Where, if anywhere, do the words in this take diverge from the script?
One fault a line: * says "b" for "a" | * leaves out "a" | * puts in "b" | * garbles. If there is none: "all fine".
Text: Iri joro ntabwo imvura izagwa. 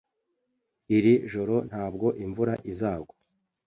all fine